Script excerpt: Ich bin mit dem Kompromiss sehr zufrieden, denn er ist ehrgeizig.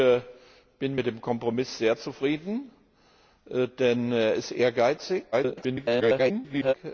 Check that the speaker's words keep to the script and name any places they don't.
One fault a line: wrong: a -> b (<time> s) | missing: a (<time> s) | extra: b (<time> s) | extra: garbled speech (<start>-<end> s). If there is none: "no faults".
extra: garbled speech (5.3-6.7 s)